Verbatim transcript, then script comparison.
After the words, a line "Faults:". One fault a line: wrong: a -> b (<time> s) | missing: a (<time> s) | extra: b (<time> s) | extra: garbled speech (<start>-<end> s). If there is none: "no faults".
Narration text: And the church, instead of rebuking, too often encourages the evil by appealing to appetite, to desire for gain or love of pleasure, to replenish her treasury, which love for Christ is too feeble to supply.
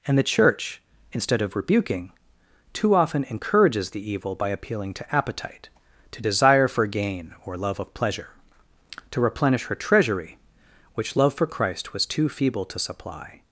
And the church, instead of rebuking, too often encourages the evil by appealing to appetite, to desire for gain or love of pleasure, to replenish her treasury, which love for Christ was too feeble to supply.
Faults:
wrong: is -> was (11.9 s)